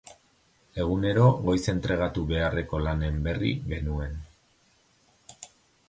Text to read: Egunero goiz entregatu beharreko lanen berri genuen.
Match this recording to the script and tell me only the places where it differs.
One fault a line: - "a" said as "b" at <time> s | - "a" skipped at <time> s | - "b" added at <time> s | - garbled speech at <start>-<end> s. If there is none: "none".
none